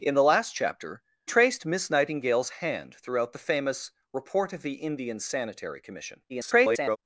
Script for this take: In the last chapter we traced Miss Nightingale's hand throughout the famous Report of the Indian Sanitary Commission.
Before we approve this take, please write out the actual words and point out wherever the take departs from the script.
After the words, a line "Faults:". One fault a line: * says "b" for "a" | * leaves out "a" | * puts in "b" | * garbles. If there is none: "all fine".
In the last chapter traced Miss Nightingale's hand throughout the famous Report of the Indian Sanitary Commission. [garbled]
Faults:
* leaves out "we"
* garbles